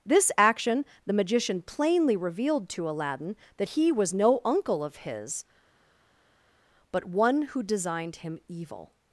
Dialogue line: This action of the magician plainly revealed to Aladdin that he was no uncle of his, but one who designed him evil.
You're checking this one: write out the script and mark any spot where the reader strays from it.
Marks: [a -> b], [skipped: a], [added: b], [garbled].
This action [skipped: of] the magician plainly revealed to Aladdin that he was no uncle of his, but one who designed him evil.